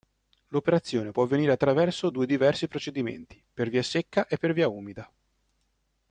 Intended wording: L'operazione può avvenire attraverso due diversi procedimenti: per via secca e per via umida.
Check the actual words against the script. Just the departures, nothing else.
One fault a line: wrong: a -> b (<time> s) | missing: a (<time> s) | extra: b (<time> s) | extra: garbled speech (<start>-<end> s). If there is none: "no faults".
no faults